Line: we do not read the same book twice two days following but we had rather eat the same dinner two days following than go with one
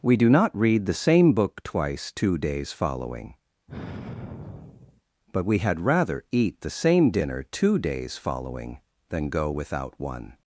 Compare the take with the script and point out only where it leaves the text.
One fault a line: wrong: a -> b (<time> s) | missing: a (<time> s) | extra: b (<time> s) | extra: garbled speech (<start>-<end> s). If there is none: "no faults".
wrong: with -> without (9.5 s)